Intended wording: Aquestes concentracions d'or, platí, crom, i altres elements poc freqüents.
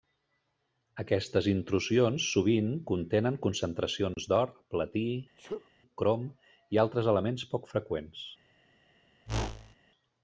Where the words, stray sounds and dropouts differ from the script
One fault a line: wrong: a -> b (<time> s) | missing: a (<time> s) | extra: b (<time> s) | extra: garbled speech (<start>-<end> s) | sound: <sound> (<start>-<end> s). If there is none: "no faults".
extra: intrusions sovint contenen (1.5 s)
sound: sneeze (5.4-5.7 s)
sound: whoosh (9.3-9.8 s)